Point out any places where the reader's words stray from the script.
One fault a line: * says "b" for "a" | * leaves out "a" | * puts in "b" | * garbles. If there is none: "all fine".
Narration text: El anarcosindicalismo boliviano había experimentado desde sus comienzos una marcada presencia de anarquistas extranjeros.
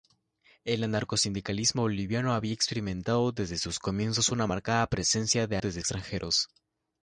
* says "desde" for "anarquistas"